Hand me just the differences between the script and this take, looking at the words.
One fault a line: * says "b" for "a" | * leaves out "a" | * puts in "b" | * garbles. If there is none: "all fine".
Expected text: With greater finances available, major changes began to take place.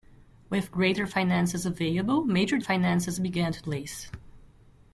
* says "finances" for "changes"
* leaves out "take"